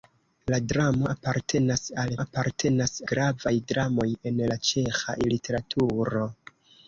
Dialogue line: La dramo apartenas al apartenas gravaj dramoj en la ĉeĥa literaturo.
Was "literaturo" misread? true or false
false